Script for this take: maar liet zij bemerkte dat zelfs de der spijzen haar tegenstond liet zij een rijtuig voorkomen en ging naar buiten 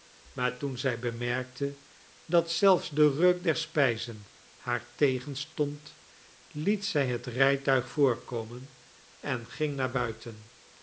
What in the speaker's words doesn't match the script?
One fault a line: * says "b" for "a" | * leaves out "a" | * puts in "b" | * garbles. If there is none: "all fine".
* says "toen" for "liet"
* puts in "reuk"
* says "het" for "een"